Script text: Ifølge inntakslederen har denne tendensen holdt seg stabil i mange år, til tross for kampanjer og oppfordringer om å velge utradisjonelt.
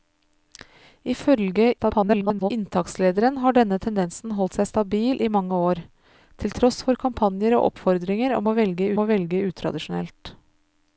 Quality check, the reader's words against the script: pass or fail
fail